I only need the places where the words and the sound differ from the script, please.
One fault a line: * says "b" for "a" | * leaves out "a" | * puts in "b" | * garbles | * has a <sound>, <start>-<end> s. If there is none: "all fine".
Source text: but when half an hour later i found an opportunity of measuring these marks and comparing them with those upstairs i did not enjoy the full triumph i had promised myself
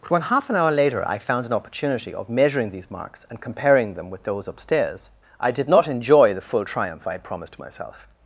all fine